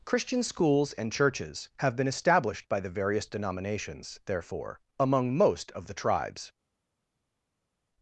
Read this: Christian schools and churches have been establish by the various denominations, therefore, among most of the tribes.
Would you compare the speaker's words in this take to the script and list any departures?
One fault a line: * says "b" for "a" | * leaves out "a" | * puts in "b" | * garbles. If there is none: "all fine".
* says "established" for "establish"